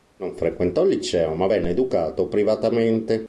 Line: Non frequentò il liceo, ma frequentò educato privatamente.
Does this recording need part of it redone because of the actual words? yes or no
yes